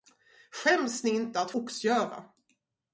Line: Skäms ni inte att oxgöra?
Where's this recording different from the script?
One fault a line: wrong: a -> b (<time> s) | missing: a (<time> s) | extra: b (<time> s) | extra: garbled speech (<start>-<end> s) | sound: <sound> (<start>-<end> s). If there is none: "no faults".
no faults